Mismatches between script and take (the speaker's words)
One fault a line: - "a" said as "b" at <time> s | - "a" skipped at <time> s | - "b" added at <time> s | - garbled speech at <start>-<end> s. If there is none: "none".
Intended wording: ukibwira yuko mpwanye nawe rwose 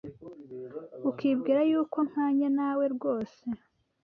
none